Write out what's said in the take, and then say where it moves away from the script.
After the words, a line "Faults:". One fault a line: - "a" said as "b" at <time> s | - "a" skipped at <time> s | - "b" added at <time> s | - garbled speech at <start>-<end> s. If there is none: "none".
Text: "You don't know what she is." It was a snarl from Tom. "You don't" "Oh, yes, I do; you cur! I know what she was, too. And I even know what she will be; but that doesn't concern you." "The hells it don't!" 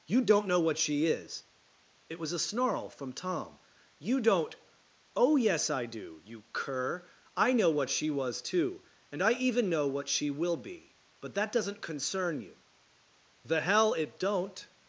"You don't know what she is." It was a snarl from Tom. "You don't" "Oh, yes, I do; you cur! I know what she was, too. And I even know what she will be; but that doesn't concern you." "The hell it don't!"
Faults:
- "hells" said as "hell" at 13.6 s